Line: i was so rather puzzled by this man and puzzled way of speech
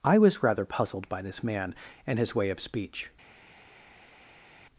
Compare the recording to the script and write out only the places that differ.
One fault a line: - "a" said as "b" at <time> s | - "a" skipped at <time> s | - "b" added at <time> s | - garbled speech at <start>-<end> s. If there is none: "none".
- "so" skipped at 0.4 s
- "puzzled" said as "his" at 2.2 s